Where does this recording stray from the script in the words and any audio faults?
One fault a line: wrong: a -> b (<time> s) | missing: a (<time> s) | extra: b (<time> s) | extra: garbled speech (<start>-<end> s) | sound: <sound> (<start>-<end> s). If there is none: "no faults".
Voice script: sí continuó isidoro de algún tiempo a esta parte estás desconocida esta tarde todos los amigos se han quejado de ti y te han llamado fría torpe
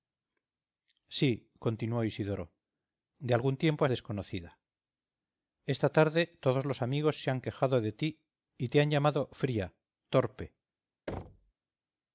missing: esta parte estás (3.8 s)
sound: thud (11.1-11.5 s)